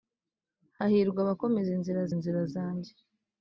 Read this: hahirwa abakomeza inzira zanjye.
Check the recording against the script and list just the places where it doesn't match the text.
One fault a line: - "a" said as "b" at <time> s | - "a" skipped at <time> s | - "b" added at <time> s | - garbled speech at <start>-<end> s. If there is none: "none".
- "inzira" added at 2.1 s